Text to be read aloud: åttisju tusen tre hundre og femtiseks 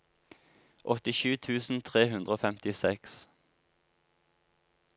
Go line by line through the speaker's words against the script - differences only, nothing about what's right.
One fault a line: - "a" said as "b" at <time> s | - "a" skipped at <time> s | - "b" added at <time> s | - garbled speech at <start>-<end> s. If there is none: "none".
none